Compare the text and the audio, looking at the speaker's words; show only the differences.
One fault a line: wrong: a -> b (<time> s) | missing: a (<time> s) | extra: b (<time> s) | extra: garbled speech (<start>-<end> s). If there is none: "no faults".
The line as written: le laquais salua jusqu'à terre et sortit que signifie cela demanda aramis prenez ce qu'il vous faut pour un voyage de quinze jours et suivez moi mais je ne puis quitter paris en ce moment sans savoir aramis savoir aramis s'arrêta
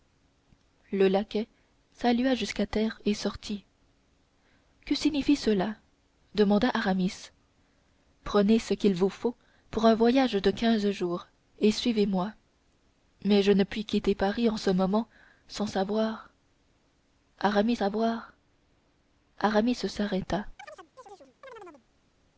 no faults